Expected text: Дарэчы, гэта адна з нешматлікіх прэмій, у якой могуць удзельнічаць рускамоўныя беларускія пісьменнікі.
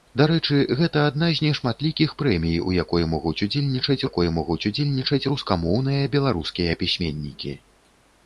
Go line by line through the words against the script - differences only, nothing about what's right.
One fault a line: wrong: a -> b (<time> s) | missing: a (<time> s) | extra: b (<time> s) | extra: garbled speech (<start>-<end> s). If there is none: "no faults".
extra: якой могуць удзельнічаць (4.1 s)